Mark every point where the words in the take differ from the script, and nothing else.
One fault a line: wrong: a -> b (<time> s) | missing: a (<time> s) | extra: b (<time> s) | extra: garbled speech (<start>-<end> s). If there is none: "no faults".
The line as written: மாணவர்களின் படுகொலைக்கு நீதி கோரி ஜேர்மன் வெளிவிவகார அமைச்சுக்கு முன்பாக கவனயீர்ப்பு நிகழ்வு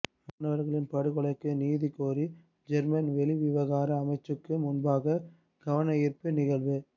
no faults